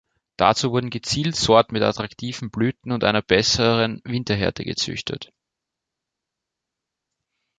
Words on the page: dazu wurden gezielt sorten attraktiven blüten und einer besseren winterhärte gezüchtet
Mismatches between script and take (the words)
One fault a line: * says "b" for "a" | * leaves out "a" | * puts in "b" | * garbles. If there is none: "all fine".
* puts in "mit"